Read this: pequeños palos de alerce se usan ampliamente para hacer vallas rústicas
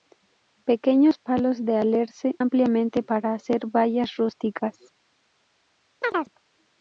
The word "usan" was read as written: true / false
false